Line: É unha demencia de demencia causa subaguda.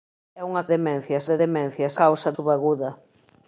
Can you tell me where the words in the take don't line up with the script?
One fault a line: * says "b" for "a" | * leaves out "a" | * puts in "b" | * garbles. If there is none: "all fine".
all fine